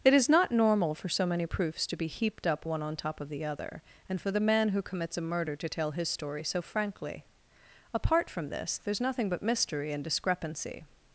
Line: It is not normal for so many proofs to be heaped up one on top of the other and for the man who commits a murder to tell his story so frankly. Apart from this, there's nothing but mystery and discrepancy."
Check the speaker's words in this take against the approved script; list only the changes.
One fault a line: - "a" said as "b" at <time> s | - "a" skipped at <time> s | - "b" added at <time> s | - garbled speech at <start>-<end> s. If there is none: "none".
none